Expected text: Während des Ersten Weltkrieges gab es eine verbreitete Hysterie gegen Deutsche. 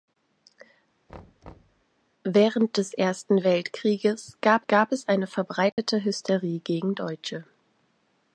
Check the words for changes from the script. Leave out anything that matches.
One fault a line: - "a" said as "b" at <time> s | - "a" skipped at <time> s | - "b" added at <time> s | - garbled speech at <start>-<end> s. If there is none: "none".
- "gab" added at 4.6 s